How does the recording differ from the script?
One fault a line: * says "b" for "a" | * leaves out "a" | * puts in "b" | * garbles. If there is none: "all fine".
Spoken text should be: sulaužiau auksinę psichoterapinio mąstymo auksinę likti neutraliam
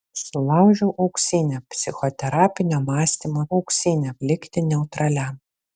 all fine